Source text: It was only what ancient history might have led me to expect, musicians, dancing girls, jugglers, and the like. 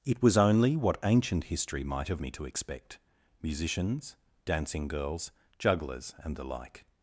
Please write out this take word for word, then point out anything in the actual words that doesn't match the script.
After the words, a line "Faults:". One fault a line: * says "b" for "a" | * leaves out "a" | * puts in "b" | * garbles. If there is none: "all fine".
It was only what ancient history might have me to expect, musicians, dancing girls, jugglers, and the like.
Faults:
* leaves out "led"